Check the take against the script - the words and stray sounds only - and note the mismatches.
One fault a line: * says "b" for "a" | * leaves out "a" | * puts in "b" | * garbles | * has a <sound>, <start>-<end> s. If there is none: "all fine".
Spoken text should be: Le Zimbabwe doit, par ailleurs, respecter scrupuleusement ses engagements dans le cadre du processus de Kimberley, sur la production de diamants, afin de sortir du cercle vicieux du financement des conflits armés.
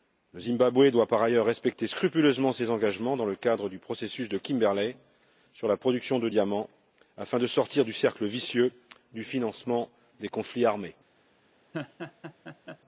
* has a laugh, 11.7-12.8 s